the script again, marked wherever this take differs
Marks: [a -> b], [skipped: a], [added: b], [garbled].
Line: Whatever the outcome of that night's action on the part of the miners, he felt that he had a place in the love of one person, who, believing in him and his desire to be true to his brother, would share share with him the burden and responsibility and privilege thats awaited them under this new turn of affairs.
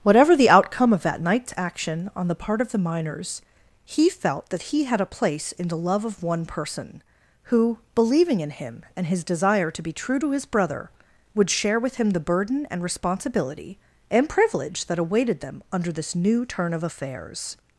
Whatever the outcome of that night's action on the part of the miners, he felt that he had a place in the love of one person, who, believing in him and his desire to be true to his brother, would share [skipped: share] with him the burden and responsibility and privilege [thats -> that] awaited them under this new turn of affairs.